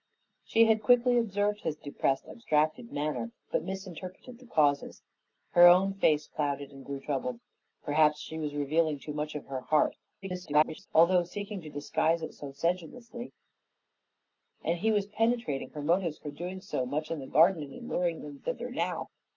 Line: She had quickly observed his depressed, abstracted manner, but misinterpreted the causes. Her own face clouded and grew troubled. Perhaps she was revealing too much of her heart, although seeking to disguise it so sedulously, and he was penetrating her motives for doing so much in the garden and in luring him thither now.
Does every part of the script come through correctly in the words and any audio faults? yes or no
no